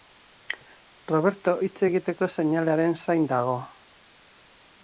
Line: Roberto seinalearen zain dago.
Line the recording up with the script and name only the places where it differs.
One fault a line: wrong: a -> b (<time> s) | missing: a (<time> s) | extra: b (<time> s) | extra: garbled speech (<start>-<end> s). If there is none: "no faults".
extra: hitz egiteko (1.7 s)